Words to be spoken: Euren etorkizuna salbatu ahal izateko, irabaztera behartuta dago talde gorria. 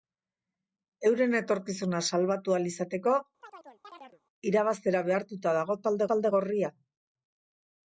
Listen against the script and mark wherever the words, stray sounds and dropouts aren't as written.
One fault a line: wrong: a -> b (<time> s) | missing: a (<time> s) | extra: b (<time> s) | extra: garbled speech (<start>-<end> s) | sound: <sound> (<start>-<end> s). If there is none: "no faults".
sound: chirp (3.4-4.2 s)
extra: talde (6.1 s)